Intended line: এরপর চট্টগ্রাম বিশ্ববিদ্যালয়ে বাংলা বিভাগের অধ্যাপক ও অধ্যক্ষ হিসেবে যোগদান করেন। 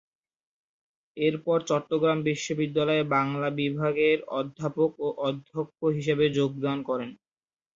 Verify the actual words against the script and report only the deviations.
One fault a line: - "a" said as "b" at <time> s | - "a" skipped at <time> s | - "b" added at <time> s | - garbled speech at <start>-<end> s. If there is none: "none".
none